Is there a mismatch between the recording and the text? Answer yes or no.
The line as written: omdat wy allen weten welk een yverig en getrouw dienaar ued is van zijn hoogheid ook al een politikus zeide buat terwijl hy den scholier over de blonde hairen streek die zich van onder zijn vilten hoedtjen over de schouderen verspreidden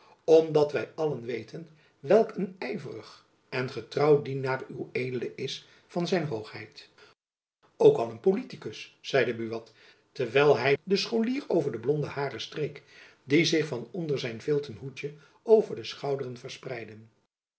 no